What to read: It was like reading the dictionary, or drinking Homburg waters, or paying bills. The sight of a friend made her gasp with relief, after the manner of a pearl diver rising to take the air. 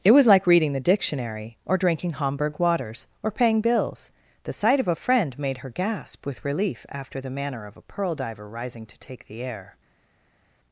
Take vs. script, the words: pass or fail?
pass